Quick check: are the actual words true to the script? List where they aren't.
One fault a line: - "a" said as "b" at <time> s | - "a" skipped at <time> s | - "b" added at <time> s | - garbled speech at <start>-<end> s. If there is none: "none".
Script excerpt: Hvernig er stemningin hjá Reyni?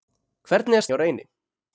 - "stemningin" skipped at 0.9 s